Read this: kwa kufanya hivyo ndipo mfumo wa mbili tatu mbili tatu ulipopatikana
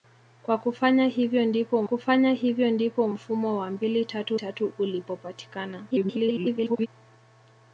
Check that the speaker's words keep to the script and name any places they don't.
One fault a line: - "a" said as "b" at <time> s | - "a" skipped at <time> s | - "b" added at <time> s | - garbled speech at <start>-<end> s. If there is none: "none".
- "kufanya hivyo ndipo" added at 1.8 s
- "mbili" skipped at 4.4 s
- garbled speech at 5.9-6.9 s